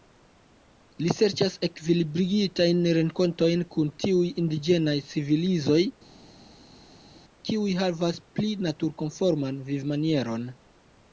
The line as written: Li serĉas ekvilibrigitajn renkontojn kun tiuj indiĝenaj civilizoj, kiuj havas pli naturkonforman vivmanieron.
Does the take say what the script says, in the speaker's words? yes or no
yes